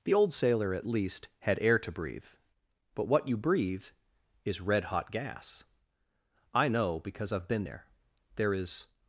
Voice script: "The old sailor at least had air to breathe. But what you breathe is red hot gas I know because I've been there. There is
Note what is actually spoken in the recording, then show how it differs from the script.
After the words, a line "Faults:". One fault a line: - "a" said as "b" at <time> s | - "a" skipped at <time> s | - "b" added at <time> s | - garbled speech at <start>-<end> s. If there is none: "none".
"The old sailor at least had air to breathe. But what you breathe is red hot gas I know because I've been there. There is
Faults:
none